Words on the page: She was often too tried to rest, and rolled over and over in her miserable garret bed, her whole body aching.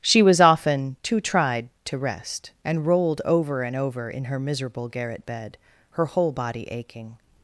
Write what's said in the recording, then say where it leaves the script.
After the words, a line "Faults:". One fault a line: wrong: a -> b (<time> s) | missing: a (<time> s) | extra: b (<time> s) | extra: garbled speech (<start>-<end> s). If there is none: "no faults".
She was often too tried to rest, and rolled over and over in her miserable garret bed, her whole body aching.
Faults:
no faults